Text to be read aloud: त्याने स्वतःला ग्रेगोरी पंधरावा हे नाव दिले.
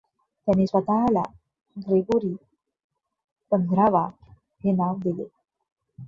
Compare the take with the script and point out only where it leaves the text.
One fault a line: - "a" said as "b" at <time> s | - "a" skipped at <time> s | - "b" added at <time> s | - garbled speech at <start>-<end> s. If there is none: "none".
none